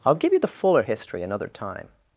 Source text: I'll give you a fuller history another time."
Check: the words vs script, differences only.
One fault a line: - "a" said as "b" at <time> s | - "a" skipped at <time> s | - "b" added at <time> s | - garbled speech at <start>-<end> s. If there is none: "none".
- "a" said as "the" at 0.4 s